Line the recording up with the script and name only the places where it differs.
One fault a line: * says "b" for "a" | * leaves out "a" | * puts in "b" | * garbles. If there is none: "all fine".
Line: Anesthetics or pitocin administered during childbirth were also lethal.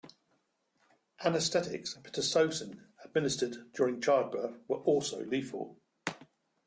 * says "and" for "or"